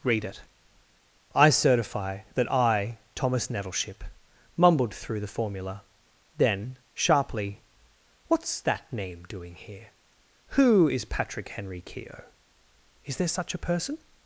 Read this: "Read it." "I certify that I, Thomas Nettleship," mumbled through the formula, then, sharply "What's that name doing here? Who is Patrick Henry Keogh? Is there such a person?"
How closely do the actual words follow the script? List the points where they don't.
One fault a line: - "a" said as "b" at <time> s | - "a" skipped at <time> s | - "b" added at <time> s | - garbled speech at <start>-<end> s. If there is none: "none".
none